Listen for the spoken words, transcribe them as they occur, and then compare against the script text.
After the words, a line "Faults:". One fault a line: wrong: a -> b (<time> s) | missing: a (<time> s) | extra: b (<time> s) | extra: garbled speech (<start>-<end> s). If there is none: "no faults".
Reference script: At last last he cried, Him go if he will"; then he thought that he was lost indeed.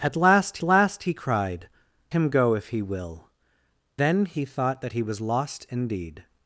At last last he cried, Him go if he will"; then he thought that he was lost indeed.
Faults:
no faults